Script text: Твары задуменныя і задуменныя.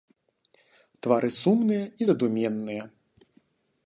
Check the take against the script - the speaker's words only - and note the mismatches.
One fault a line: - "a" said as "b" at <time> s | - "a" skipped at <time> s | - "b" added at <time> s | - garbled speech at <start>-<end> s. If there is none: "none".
- "задуменныя" said as "сумныя" at 1.4 s